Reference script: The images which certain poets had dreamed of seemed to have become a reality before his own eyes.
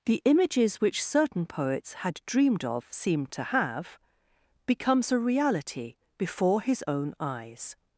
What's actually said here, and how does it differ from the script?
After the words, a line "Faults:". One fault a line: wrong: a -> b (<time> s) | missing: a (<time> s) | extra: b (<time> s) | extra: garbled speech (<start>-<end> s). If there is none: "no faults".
The images which certain poets had dreamed of seemed to have becomes a reality before his own eyes.
Faults:
wrong: become -> becomes (4.7 s)